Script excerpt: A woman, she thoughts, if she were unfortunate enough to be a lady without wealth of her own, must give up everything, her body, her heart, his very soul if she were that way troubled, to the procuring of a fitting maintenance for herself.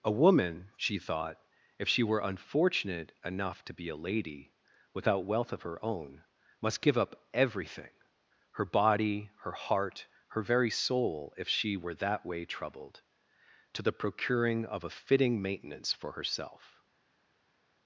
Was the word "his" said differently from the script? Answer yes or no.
yes